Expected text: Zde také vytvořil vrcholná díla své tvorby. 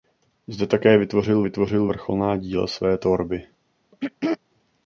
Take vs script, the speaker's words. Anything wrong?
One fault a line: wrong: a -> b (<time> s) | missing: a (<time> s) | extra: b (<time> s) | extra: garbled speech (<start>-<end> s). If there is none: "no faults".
extra: vytvořil (1.4 s)